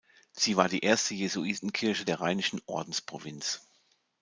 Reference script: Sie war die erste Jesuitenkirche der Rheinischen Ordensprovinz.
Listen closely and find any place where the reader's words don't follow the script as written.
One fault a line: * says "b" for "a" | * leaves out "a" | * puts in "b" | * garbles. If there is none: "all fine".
all fine